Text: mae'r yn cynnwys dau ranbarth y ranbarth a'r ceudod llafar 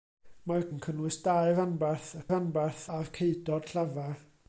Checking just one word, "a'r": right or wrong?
right